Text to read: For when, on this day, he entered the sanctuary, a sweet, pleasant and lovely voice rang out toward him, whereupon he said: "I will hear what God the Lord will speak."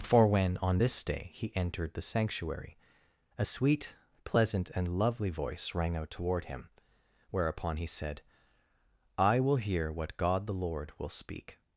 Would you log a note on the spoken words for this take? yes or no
no